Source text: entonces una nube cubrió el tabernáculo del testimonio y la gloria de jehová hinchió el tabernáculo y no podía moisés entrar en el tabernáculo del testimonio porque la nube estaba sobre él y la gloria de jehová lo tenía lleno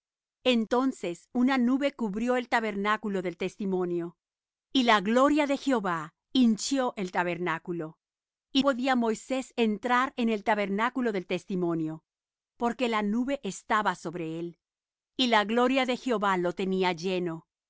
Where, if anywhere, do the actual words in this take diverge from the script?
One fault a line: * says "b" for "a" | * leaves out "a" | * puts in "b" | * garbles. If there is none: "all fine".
* leaves out "no"